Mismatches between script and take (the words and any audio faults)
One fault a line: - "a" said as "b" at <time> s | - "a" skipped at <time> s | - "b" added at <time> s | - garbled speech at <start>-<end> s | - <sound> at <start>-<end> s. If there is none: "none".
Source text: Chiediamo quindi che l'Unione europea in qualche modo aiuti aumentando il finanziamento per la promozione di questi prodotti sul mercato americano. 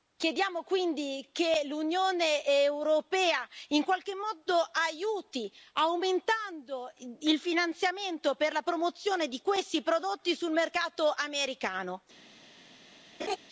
- laugh at 13.2-13.4 s